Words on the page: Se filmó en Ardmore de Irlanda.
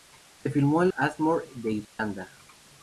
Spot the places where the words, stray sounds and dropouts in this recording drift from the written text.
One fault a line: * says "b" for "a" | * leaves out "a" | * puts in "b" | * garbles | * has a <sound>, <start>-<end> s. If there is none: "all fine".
* has a dropout, 1.8-2.0 s